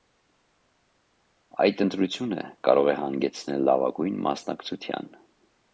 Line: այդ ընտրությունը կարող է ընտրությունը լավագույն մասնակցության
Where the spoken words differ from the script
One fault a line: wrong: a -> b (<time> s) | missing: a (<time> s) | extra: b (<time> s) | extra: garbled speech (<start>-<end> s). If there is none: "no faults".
wrong: ընտրությունը -> հանգեցնել (3.0 s)